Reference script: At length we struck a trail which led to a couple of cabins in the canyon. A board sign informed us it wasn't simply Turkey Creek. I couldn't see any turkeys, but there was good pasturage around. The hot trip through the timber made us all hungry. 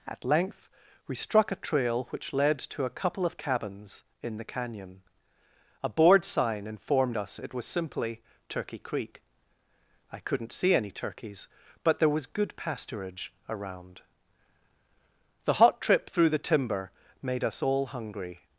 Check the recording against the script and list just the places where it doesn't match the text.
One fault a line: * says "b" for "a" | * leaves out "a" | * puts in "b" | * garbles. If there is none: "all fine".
* says "was" for "wasn't"